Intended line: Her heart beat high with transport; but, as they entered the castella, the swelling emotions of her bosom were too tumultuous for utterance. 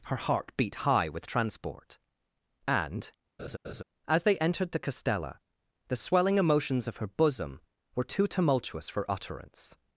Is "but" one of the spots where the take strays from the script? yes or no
yes